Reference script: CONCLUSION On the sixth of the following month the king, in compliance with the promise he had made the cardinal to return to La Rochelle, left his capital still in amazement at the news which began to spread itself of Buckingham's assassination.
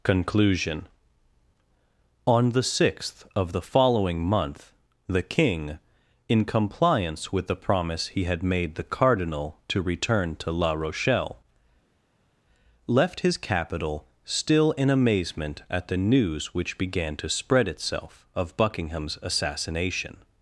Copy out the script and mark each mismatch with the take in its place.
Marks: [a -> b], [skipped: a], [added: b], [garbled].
CONCLUSION On the sixth of the following month the king, in compliance with the promise he had made the cardinal to return to La Rochelle, left his capital still in amazement at the news which began to spread itself of Buckingham's assassination.